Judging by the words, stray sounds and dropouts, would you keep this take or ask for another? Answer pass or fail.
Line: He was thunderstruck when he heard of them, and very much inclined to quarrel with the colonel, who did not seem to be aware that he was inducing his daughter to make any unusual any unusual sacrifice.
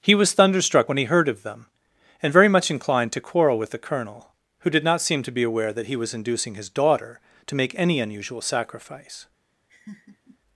fail